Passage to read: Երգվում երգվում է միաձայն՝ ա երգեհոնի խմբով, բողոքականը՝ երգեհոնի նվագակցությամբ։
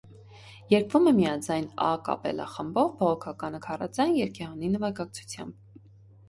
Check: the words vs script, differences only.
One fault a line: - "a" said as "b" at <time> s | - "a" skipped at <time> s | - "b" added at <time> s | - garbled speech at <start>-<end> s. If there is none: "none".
- "երգվում" skipped at 1.1 s
- "երգեհոնի" said as "կապելլա" at 2.1 s
- "քառաձայն" added at 3.7 s